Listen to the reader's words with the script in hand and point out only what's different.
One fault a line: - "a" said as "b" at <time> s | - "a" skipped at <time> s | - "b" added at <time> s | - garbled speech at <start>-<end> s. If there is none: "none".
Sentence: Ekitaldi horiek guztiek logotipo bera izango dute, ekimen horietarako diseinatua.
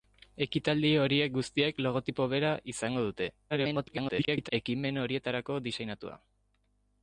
- garbled speech at 3.5-4.5 s